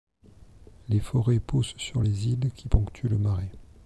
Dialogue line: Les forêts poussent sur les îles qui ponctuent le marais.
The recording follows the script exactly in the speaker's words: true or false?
true